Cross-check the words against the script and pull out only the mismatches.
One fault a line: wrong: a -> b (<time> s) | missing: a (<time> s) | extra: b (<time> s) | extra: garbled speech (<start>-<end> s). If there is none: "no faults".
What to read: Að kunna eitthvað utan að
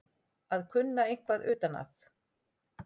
no faults